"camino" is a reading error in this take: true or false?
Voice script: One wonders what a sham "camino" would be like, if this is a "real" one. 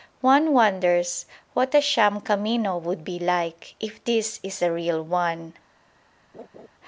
false